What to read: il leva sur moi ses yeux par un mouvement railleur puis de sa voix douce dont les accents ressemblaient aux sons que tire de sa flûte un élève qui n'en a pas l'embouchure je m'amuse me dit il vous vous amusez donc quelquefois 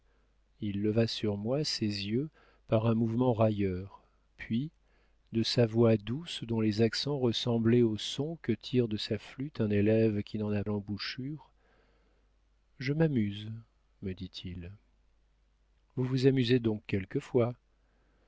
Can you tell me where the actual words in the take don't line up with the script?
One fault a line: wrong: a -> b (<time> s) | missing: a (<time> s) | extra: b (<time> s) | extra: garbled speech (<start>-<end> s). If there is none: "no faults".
missing: pas (10.6 s)